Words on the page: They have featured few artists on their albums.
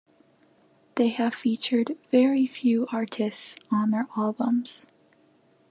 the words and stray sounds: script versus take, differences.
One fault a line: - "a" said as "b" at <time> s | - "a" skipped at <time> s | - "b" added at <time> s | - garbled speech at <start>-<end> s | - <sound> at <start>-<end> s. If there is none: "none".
- "very" added at 2.1 s